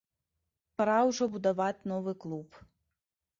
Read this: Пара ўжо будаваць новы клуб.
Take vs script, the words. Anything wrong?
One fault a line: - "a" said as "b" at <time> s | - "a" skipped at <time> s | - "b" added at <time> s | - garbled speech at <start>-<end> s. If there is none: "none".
none